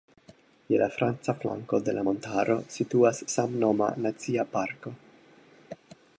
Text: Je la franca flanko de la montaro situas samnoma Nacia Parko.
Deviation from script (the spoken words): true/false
false